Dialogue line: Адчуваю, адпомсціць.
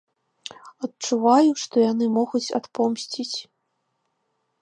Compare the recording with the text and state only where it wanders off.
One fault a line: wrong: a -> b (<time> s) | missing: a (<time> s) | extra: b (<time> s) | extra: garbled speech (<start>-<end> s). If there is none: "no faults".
extra: што яны могуць (1.6 s)